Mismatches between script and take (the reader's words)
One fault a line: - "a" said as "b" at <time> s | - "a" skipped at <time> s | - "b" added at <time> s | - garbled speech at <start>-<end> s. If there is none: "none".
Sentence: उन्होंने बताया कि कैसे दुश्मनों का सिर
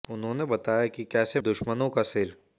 none